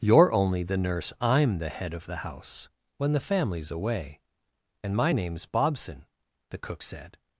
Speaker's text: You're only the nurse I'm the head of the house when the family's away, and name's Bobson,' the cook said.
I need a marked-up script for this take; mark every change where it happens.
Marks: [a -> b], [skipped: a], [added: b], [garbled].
You're only the nurse I'm the head of the house when the family's away, and [added: my] name's Bobson,' the cook said.